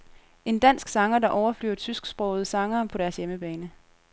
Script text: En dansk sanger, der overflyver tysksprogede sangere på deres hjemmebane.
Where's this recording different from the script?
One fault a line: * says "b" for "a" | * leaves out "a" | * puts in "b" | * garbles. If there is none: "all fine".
all fine